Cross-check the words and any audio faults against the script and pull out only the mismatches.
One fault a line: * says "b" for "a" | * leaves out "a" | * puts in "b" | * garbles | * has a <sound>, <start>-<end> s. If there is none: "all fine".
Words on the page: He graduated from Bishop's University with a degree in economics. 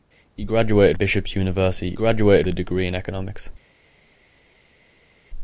* leaves out "from"
* says "graduated" for "with"